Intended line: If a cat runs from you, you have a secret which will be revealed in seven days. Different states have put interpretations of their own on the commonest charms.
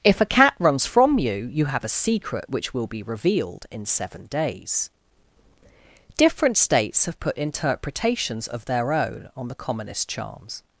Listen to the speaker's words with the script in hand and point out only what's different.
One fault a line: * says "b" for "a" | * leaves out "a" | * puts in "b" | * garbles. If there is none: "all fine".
all fine